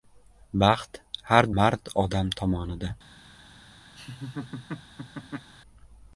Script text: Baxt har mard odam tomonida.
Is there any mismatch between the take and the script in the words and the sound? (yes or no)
yes